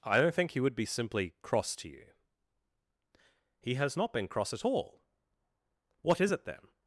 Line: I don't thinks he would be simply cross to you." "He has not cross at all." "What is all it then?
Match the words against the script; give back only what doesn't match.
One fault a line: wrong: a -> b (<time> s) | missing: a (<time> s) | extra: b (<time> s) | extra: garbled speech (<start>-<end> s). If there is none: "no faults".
wrong: thinks -> think (0.3 s)
extra: been (4.1 s)
missing: all (6.3 s)